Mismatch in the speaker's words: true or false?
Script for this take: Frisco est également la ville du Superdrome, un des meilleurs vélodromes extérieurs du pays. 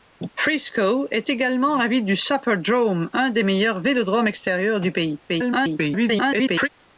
true